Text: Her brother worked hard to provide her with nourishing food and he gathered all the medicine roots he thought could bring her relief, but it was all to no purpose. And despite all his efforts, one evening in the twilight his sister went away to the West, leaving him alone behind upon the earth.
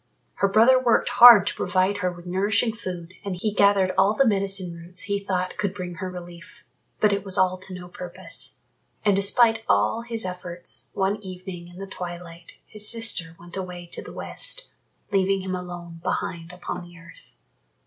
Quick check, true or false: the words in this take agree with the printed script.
true